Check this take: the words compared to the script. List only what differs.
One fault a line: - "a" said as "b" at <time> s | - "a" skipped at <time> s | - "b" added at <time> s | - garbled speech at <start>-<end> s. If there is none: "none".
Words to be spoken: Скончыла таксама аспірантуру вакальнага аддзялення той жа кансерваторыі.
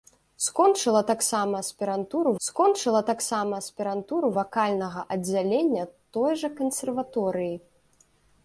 - "скончыла таксама аспірантуру" added at 2.5 s